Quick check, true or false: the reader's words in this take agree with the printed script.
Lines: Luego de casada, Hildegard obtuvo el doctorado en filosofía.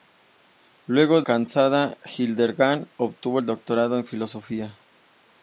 false